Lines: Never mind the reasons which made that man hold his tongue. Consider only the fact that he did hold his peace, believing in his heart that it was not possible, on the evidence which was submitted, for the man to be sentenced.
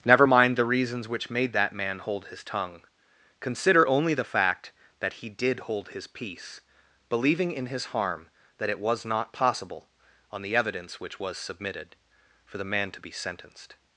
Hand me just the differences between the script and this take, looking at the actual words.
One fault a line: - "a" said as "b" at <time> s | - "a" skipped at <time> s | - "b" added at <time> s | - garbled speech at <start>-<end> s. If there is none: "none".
- "heart" said as "harm" at 7.9 s